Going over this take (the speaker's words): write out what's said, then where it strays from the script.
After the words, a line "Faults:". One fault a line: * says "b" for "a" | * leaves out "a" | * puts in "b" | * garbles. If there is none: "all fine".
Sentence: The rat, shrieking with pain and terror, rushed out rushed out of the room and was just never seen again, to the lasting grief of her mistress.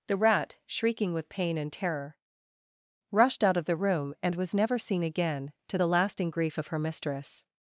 The rat, shrieking with pain and terror, rushed out of the room and was never seen again, to the lasting grief of her mistress.
Faults:
* leaves out "rushed out"
* leaves out "just"